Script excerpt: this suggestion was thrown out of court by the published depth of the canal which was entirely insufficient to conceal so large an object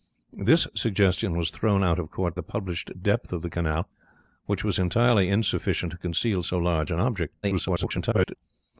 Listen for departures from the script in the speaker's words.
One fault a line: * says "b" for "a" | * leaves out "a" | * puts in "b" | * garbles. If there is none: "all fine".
* leaves out "by"
* garbles